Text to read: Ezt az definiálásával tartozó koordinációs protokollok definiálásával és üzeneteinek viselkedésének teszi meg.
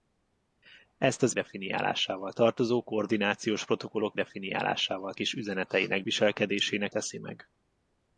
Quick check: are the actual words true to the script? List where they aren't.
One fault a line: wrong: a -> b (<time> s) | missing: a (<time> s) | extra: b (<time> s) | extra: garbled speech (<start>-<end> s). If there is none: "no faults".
no faults